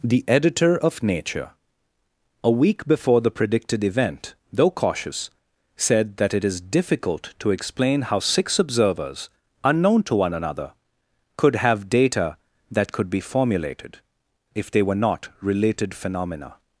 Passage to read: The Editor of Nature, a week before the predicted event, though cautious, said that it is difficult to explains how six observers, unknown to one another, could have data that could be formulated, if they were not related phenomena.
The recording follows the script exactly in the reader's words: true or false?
false